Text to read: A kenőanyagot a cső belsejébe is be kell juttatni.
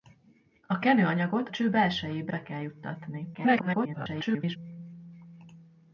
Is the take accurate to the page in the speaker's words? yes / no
no